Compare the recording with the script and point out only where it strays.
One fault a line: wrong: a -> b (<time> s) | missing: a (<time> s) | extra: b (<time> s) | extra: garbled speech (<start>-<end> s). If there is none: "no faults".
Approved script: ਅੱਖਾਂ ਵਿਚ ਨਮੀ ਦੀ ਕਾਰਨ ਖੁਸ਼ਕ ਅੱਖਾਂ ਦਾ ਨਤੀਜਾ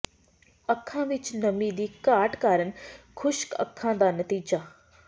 extra: ਘਾਟ (2.1 s)